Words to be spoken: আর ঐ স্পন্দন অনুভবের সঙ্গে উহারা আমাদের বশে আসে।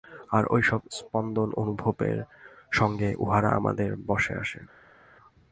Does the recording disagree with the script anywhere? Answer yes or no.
yes